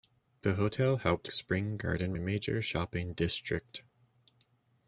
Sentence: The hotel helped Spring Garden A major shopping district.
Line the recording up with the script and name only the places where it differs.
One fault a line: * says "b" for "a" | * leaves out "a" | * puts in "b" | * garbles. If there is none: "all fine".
all fine